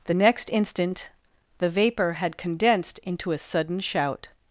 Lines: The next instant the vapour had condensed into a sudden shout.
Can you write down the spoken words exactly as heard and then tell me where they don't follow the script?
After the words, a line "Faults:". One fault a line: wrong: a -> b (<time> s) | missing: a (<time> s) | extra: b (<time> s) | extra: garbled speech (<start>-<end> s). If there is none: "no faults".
The next instant the vapour had condensed into a sudden shout.
Faults:
no faults